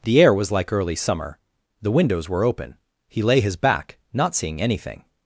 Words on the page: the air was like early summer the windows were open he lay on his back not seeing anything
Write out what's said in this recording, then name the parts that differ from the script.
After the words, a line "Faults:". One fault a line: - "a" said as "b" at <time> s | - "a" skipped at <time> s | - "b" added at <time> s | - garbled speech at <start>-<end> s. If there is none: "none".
the air was like early summer the windows were open he lay his back not seeing anything
Faults:
- "on" skipped at 3.4 s